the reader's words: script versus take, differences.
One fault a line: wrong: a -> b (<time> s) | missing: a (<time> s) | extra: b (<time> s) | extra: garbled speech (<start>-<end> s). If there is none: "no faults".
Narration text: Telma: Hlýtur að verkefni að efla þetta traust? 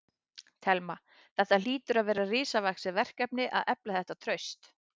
extra: Þetta (1.4 s)
extra: vera risavaxið (2.1 s)